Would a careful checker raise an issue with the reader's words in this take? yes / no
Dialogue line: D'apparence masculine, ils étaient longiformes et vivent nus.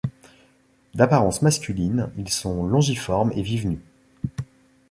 yes